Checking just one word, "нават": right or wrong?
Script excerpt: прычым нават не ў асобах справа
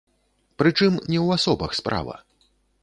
wrong